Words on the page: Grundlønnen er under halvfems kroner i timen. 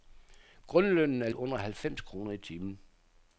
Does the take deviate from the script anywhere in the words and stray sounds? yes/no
no